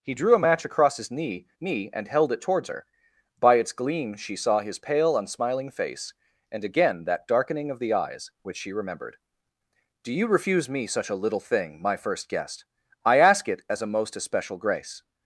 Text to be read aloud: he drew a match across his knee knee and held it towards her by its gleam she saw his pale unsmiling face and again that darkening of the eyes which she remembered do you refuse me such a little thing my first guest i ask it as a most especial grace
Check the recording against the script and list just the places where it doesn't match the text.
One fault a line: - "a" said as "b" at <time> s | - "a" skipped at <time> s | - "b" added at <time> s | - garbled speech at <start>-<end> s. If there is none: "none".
none